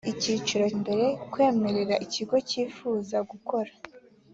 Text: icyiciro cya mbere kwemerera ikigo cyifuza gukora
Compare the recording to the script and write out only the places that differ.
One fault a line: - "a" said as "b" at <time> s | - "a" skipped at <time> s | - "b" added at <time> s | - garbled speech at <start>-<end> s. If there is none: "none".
- "cya" skipped at 0.7 s